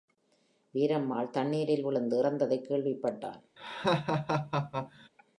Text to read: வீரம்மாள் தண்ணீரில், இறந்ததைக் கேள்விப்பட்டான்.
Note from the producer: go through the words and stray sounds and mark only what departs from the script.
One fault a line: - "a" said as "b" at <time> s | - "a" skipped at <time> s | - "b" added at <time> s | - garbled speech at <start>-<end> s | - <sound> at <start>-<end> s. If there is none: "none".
- "விழுந்து" added at 1.8 s
- laugh at 3.6-5.1 s